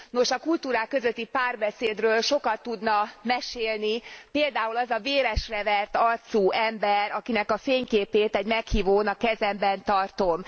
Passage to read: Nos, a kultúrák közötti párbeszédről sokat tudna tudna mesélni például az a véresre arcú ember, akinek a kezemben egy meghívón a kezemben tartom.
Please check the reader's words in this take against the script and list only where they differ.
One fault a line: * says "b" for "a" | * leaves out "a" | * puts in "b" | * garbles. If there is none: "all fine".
* leaves out "tudna"
* puts in "vert"
* says "fényképét" for "kezemben"